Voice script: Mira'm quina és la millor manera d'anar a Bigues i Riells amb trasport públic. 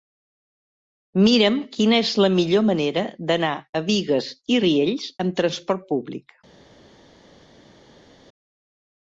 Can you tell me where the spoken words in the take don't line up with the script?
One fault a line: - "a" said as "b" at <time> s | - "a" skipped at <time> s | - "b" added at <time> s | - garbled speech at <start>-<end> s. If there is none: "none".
none